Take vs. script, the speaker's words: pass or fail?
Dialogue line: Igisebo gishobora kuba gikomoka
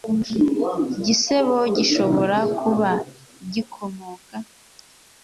pass